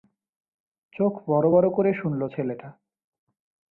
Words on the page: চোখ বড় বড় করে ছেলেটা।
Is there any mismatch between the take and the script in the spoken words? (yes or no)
yes